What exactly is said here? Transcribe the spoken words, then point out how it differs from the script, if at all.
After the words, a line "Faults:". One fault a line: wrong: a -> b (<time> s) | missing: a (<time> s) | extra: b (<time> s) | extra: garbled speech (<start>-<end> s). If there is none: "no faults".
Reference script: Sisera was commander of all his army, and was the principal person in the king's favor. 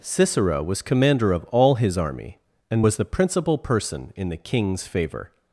Sisera was commander of all his army, and was the principal person in the king's favor.
Faults:
no faults